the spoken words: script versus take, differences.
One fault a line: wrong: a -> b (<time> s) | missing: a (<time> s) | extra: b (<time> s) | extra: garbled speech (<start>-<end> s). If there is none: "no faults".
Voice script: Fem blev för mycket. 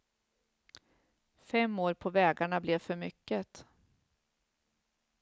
extra: år på vägarna (1.8 s)